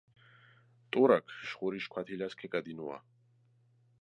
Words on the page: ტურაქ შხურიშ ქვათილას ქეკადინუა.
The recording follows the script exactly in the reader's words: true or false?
true